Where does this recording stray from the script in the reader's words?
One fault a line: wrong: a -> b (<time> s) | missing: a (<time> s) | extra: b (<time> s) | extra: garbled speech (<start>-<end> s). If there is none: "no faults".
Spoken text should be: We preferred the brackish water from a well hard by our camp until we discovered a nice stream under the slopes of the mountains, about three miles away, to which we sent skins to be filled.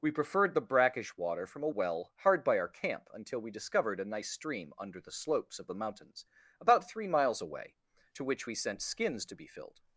no faults